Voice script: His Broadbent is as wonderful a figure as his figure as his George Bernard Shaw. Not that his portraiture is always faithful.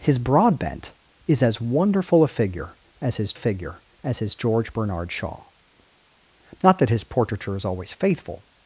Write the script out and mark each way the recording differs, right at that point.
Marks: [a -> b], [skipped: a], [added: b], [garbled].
His Broadbent is as wonderful a figure as his figure as his George Bernard Shaw. Not that his portraiture is always faithful.